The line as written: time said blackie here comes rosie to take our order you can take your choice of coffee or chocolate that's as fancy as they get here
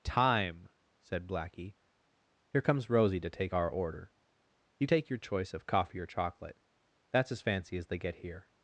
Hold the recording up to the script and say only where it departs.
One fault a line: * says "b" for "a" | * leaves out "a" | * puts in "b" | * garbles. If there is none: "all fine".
* leaves out "can"